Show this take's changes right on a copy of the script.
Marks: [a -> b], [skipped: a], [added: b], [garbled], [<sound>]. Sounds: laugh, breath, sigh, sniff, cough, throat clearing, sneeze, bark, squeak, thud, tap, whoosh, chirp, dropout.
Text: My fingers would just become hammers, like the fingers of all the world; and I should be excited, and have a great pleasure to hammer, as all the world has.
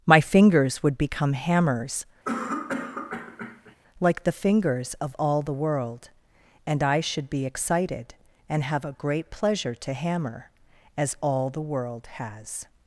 My fingers would [skipped: just] become hammers, [cough] like the fingers of all the world; and I should be excited, and have a great pleasure to hammer, as all the world has.